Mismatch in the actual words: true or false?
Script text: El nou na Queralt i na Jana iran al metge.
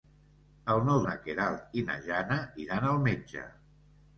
false